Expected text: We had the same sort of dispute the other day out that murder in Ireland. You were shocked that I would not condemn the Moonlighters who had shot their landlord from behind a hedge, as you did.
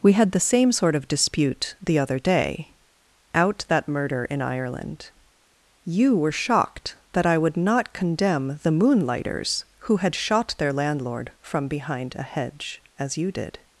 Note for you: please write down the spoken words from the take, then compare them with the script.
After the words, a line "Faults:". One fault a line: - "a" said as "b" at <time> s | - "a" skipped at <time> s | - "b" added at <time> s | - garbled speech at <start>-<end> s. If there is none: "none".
We had the same sort of dispute the other day out that murder in Ireland. You were shocked that I would not condemn the Moonlighters who had shot their landlord from behind a hedge, as you did.
Faults:
none